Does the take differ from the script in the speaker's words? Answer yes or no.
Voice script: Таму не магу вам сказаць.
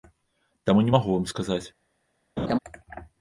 no